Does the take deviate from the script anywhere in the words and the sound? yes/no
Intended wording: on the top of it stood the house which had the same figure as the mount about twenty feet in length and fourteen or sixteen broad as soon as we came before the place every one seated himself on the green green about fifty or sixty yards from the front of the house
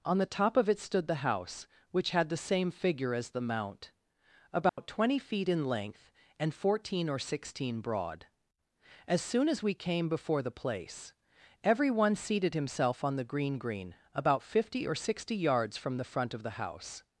yes